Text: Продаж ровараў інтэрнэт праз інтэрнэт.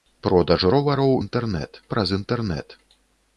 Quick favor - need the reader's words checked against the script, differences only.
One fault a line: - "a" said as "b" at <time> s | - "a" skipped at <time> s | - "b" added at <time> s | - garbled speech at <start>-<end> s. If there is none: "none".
none